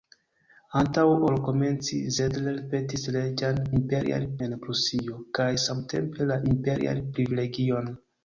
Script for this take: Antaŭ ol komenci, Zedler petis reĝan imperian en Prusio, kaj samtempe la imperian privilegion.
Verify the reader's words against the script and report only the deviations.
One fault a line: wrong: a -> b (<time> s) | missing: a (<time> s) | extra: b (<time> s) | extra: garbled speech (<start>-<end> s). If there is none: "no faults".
no faults